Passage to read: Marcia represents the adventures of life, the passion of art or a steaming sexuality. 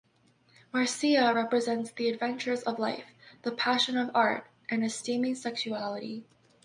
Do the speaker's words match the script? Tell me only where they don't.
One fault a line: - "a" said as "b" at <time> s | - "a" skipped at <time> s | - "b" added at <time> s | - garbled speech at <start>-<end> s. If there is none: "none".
- "or" said as "and" at 4.7 s